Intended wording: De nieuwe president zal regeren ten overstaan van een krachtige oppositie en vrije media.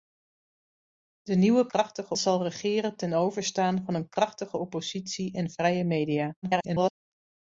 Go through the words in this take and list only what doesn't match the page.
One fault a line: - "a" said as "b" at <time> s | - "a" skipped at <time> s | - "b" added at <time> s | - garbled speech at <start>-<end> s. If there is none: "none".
- "president" said as "krachtige" at 1.7 s
- garbled speech at 6.4-6.9 s